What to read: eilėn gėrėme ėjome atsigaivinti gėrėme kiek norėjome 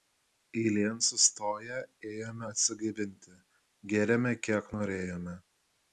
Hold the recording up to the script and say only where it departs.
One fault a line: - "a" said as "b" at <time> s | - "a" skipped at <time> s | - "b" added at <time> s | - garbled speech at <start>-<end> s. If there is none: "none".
- "gėrėme" said as "sustoję" at 1.1 s